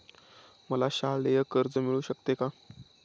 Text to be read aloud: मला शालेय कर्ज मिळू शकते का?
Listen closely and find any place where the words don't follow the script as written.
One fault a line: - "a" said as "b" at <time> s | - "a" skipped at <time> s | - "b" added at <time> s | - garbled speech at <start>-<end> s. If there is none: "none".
none